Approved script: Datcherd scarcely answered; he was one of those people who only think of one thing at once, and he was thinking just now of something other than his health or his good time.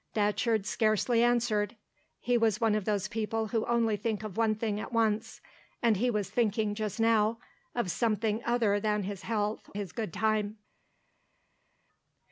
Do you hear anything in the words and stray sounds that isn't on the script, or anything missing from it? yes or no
yes